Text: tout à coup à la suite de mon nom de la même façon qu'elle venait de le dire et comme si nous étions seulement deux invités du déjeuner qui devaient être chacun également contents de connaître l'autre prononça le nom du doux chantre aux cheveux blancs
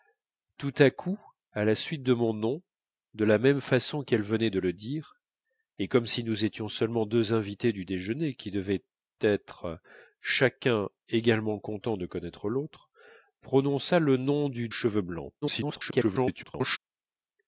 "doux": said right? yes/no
no